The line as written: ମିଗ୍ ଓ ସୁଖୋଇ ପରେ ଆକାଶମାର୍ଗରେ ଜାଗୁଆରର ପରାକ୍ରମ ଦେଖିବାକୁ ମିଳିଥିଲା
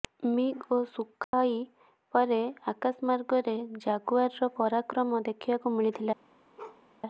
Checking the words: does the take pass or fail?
pass